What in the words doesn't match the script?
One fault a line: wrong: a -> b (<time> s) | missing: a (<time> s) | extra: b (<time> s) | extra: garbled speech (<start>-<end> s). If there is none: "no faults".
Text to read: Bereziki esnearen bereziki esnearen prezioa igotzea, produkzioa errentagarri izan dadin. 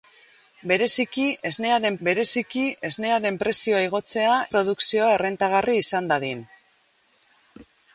no faults